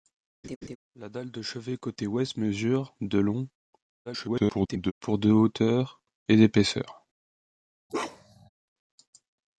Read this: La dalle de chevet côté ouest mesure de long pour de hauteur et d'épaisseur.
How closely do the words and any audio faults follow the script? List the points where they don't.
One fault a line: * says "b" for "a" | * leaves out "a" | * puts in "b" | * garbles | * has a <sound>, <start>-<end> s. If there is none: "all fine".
* has a laugh, 0.4-0.8 s
* garbles
* has a bark, 7.9-8.5 s